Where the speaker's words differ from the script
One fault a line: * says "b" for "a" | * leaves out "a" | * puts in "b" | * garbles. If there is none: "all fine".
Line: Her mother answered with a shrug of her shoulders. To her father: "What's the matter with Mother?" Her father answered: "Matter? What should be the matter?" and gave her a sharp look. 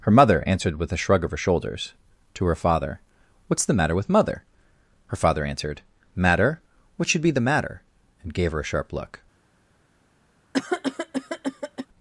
all fine